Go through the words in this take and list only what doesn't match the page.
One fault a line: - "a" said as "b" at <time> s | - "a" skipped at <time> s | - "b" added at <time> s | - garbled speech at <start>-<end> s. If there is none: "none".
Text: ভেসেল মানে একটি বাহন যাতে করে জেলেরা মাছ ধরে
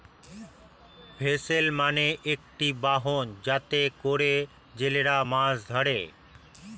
none